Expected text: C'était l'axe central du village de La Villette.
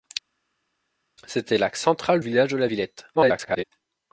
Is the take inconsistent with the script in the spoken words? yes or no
yes